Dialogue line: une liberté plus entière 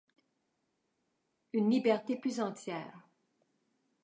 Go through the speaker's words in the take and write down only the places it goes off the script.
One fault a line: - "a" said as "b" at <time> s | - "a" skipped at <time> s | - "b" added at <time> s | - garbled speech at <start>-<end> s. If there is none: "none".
none